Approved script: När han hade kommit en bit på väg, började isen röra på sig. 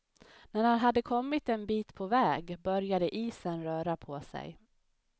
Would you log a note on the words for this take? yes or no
no